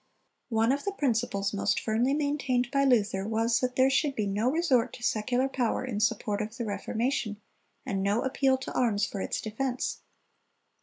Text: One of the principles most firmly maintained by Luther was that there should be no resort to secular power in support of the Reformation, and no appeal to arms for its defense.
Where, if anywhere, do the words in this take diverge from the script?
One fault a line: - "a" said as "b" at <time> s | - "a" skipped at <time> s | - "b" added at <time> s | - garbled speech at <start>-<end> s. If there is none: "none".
none